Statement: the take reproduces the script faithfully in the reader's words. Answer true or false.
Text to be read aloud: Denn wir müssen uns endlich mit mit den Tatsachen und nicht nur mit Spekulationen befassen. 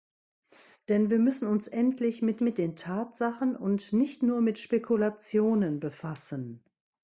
true